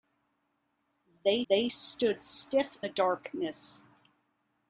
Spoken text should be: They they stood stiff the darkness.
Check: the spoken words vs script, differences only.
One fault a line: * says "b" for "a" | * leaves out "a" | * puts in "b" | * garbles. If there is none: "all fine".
all fine